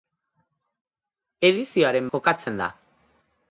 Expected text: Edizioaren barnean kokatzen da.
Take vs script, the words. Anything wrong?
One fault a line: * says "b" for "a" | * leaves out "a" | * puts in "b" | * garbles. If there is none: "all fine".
* leaves out "barnean"